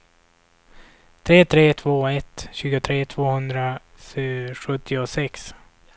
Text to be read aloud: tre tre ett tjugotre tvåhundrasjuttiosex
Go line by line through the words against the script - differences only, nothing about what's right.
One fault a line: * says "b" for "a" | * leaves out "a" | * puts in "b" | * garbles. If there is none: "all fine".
* puts in "två"